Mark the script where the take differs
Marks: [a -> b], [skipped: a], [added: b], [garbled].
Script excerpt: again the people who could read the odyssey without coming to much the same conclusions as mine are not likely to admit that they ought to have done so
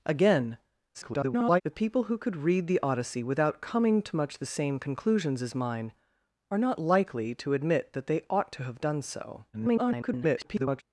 again [garbled] the people who could read the odyssey without coming to much the same conclusions as mine are not likely to admit that they ought to have done so [garbled]